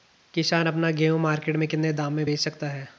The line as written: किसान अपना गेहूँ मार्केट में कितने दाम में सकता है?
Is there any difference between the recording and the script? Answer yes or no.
yes